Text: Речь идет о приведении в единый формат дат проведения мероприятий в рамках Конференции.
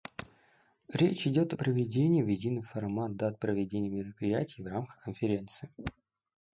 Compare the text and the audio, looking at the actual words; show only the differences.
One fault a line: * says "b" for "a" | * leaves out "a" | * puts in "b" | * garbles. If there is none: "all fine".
all fine